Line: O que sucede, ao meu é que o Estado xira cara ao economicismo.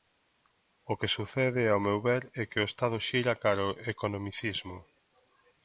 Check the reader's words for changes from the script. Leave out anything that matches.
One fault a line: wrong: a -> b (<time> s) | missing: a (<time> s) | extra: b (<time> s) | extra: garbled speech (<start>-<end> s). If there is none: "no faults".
extra: ver (2.1 s)